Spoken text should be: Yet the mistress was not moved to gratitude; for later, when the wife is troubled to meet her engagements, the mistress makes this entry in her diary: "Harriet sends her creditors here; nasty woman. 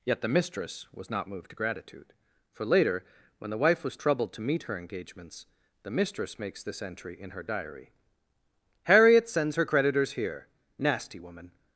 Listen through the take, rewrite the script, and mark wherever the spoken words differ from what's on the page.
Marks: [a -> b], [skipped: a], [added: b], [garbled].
Yet the mistress was not moved to gratitude; for later, when the wife [is -> was] troubled to meet her engagements, the mistress makes this entry in her diary: "Harriet sends her creditors here; nasty woman.